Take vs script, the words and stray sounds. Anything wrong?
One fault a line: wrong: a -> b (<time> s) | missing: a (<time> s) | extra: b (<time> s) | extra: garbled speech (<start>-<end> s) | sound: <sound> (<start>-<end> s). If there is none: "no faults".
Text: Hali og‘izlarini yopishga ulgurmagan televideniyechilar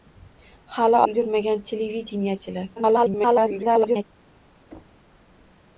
missing: og‘izlarini yopishga (1.0 s)
extra: garbled speech (2.8-4.0 s)
sound: thud (4.7-5.1 s)